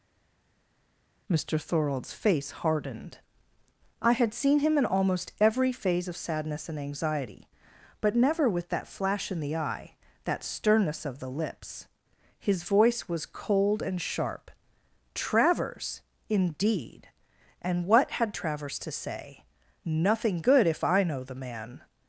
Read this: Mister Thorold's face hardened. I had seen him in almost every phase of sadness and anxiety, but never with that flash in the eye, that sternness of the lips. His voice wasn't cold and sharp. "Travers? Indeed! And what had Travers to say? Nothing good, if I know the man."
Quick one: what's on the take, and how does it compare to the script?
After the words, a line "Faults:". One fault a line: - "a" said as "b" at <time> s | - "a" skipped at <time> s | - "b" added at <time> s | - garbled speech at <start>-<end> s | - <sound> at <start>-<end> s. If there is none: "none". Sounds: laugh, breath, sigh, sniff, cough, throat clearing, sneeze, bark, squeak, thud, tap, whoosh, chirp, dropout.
Mister Thorold's face hardened. I had seen him in almost every phase of sadness and anxiety, but never with that flash in the eye, that sternness of the lips. His voice was cold and sharp. "Travers? Indeed! And what had Travers to say? Nothing good, if I know the man."
Faults:
- "wasn't" said as "was" at 13.1 s